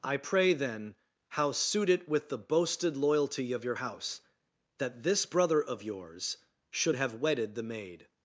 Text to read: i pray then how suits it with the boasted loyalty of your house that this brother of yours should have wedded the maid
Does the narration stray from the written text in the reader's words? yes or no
yes